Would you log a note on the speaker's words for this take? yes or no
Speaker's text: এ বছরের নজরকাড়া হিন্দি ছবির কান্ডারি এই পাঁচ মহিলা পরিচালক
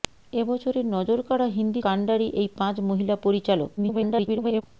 yes